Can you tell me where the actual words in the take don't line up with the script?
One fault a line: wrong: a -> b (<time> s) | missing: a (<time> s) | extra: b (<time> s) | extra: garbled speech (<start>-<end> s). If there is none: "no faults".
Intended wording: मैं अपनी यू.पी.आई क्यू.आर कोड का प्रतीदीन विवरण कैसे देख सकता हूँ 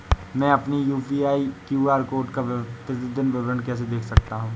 no faults